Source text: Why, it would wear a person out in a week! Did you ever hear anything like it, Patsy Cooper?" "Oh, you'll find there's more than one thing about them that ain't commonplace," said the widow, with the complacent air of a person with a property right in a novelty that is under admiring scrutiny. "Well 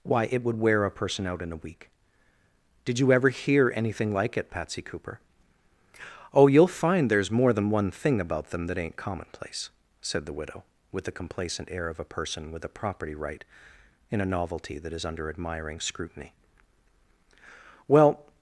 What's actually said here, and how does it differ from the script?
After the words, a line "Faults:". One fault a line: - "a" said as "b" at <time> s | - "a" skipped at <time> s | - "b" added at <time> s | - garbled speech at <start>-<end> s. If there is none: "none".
Why, it would wear a person out in a week! Did you ever hear anything like it, Patsy Cooper?" "Oh, you'll find there's more than one thing about them that ain't commonplace," said the widow, with the complacent air of a person with a property right in a novelty that is under admiring scrutiny. "Well
Faults:
none